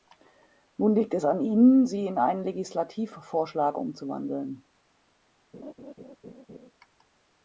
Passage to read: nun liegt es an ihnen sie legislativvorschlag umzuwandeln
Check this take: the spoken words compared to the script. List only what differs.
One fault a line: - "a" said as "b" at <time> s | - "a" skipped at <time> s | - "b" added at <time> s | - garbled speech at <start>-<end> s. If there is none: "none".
- "in einen" added at 2.1 s